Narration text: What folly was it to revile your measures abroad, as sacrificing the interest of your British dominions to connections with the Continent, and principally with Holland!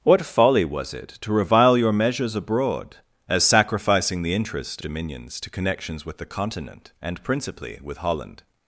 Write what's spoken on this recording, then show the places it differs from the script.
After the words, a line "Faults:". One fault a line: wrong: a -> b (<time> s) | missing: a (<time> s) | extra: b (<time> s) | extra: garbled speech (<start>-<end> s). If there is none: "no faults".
What folly was it to revile your measures abroad, as sacrificing the interest dominions to connections with the Continent, and principally with Holland!
Faults:
missing: of your British (4.8 s)